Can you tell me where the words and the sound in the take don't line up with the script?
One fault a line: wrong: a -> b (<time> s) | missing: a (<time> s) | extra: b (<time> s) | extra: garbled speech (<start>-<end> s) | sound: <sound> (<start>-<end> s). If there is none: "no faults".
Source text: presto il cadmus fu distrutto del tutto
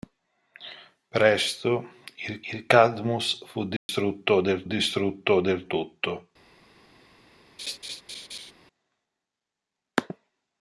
extra: il (2.5 s)
sound: dropout (3.8-3.9 s)
extra: distrutto del (4.6 s)
sound: laugh (7.6-8.5 s)